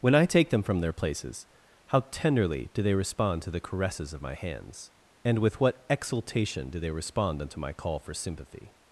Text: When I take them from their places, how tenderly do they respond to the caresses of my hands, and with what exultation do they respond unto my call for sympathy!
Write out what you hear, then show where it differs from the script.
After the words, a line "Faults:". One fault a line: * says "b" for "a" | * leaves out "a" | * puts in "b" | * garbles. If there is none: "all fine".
When I take them from their places, how tenderly do they respond to the caresses of my hands, and with what exultation do they respond unto my call for sympathy!
Faults:
all fine